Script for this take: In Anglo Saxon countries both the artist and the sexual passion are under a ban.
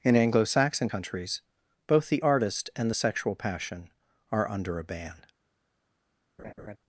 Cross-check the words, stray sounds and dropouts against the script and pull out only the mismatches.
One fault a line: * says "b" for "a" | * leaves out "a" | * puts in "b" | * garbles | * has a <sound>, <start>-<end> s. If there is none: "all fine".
* has a laugh, 6.4-6.8 s